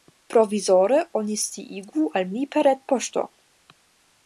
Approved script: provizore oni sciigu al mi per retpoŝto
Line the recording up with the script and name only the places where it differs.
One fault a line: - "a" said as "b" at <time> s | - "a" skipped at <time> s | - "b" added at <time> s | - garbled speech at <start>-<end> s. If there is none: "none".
none